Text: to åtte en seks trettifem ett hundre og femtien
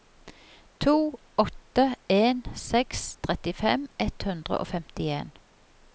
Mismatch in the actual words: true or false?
false